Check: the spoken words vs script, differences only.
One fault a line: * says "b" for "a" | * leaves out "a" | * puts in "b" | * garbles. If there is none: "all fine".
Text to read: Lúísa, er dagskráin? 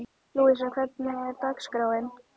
* puts in "hvernig"